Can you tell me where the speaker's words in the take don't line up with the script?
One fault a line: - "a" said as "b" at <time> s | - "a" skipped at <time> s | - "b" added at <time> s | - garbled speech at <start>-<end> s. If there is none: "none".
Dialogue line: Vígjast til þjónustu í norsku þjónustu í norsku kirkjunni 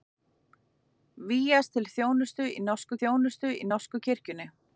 none